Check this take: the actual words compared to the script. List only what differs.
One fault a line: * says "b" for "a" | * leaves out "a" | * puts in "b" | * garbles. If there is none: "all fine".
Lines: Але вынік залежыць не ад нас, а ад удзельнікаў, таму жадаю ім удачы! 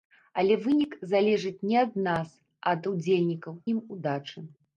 * leaves out "таму жадаю"